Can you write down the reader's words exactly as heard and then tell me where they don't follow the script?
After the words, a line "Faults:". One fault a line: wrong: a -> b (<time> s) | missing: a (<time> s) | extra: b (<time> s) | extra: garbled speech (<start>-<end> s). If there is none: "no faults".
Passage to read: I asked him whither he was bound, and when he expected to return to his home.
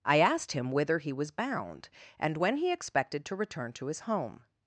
I asked him whither he was bound, and when he expected to return to his home.
Faults:
no faults